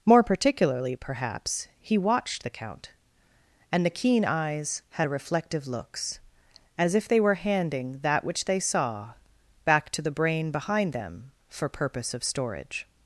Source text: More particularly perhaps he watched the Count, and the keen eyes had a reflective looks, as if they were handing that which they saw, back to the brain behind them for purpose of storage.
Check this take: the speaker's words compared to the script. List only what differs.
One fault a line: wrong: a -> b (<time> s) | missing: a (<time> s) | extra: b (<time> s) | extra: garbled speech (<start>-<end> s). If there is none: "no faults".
no faults